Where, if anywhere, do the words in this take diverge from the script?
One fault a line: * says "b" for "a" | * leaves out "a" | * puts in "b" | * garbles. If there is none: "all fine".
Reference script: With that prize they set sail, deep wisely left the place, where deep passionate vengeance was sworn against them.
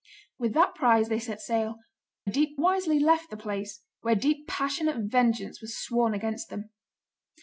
all fine